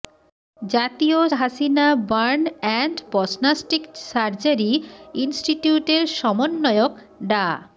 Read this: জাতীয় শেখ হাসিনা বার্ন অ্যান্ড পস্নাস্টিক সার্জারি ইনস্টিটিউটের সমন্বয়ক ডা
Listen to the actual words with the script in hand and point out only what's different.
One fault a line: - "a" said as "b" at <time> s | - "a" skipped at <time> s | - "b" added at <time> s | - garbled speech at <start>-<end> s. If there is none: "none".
- "শেখ" skipped at 1.2 s